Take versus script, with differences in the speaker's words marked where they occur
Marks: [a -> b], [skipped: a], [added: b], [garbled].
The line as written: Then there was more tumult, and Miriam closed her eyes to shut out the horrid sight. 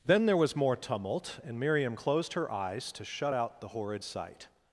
Then there was more tumult, and Miriam closed her eyes to shut out the horrid sight.